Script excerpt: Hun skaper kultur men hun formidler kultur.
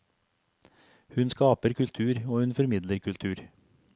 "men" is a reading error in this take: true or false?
true